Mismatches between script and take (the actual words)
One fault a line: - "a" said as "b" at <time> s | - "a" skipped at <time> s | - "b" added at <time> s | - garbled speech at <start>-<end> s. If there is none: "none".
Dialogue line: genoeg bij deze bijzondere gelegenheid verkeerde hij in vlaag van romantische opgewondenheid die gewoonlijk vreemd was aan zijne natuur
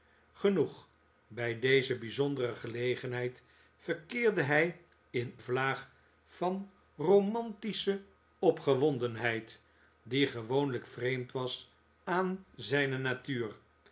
none